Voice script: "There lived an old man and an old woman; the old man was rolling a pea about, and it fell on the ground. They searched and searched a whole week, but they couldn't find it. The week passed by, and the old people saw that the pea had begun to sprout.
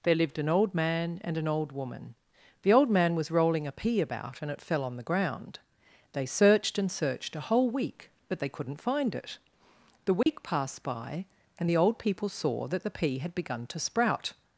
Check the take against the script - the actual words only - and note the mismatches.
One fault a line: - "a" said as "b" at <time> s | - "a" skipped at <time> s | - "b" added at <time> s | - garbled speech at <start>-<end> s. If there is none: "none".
none